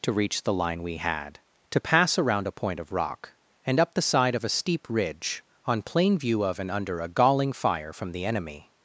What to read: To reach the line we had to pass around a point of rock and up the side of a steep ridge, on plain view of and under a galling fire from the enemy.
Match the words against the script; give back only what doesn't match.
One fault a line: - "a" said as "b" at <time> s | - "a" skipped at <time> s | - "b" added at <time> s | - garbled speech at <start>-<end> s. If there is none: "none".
none